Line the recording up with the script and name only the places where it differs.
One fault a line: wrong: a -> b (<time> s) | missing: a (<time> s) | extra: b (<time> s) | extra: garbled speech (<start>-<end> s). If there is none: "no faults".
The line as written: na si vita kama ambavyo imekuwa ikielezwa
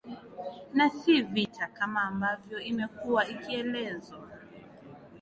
no faults